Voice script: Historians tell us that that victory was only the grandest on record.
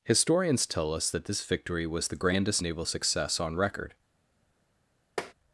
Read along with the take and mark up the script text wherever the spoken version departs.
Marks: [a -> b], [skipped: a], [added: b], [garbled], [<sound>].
Historians tell us that [that -> this] victory was [skipped: only] the grandest [added: naval success] on record. [tap]